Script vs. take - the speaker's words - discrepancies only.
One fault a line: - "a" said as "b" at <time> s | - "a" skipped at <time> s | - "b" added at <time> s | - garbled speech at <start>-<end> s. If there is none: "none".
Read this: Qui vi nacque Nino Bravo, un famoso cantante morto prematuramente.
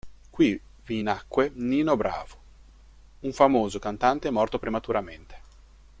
none